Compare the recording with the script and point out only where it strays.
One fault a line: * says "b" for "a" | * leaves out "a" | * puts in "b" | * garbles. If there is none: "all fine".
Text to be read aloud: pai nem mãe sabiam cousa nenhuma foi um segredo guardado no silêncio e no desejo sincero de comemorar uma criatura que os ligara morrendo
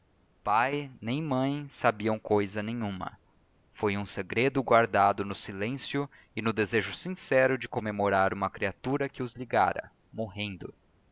all fine